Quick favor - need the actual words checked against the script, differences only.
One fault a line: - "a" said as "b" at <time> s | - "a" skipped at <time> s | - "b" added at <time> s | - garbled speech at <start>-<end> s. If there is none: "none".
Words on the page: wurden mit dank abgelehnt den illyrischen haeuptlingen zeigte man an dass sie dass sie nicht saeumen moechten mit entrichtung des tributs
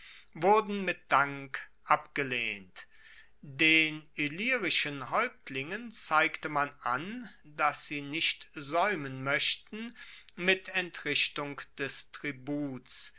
- "dass sie" skipped at 8.0 s